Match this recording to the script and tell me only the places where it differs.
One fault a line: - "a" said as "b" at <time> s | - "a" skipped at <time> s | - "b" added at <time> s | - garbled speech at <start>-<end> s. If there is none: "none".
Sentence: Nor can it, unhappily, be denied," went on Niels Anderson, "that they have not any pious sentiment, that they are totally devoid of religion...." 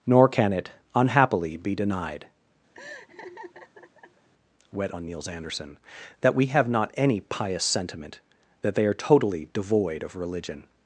- "went" said as "wet" at 4.7 s
- "they" said as "we" at 6.3 s